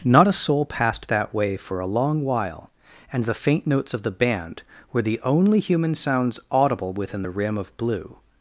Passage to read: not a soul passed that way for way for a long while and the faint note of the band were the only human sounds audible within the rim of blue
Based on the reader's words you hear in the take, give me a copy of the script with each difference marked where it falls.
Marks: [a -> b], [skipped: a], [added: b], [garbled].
not a soul passed that way for [skipped: way for] a long while and the faint [note -> notes] of the band were the only human sounds audible within the rim of blue